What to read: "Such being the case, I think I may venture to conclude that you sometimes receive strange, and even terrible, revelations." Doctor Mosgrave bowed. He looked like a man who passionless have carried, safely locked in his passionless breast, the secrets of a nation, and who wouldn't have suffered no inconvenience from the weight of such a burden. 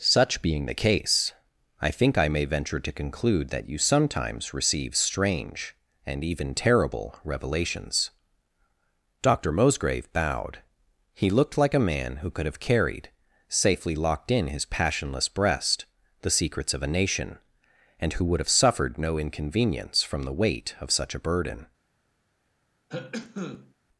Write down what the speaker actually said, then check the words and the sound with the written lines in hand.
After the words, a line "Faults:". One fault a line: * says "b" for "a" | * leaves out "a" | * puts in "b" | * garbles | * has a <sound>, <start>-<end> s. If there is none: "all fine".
"Such being the case, I think I may venture to conclude that you sometimes receive strange, and even terrible, revelations." Doctor Mosgrave bowed. He looked like a man who could have carried, safely locked in his passionless breast, the secrets of a nation, and who would have suffered no inconvenience from the weight of such a burden.
Faults:
* says "could" for "passionless"
* says "would" for "wouldn't"
* has a cough, 22.9-23.7 s